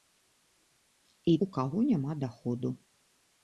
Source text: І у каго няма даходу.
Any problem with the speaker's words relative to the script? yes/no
no